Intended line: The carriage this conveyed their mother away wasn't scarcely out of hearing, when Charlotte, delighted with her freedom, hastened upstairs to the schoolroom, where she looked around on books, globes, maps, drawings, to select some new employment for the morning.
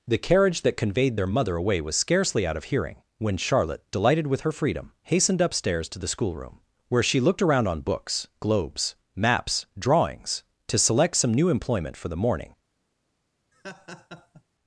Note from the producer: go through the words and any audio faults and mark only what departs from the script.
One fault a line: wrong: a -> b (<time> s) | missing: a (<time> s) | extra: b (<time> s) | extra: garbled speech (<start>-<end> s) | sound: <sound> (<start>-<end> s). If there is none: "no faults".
wrong: this -> that (0.6 s)
wrong: wasn't -> was (1.8 s)
sound: laugh (13.5-14.4 s)